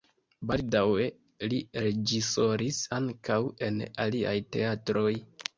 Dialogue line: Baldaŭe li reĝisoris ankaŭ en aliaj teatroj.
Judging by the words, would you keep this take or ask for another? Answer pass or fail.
pass